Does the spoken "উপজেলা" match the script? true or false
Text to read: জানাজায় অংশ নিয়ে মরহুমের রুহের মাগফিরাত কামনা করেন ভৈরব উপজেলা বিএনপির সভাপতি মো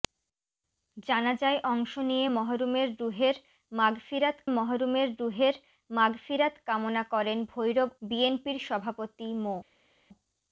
false